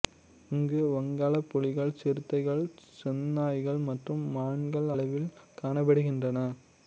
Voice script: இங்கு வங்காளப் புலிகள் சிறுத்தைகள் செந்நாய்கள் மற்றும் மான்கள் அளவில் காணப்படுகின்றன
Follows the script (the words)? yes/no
yes